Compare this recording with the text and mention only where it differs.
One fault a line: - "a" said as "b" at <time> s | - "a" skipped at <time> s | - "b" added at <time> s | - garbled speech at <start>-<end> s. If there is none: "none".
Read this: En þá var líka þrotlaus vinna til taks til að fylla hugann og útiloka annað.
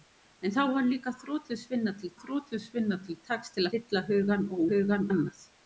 - "þrotlaus vinna til" added at 2.2 s
- "að" skipped at 3.7 s
- "útiloka" said as "hugann" at 4.7 s